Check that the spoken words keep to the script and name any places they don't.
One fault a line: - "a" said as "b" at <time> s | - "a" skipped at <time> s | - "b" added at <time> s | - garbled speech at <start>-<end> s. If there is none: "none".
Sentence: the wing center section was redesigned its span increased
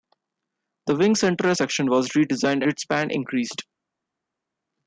none